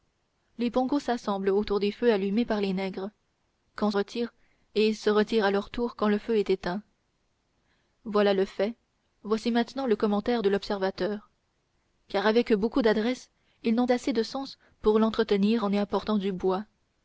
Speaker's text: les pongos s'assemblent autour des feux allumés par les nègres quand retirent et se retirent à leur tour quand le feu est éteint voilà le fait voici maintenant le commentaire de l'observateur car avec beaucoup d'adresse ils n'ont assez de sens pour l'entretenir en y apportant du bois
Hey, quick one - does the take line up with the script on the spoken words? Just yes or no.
yes